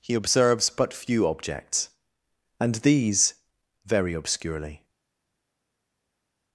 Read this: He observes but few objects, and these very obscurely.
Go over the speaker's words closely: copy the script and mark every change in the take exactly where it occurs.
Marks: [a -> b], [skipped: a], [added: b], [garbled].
He observes but few objects, and these very obscurely.